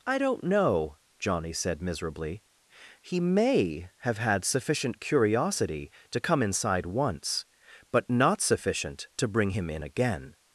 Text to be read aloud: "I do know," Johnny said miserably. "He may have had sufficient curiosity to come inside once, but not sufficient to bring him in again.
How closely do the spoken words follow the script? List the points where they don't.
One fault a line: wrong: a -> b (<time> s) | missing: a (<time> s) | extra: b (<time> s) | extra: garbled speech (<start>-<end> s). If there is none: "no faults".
wrong: do -> don't (0.2 s)